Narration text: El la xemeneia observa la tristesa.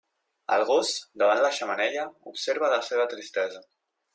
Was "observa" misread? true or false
false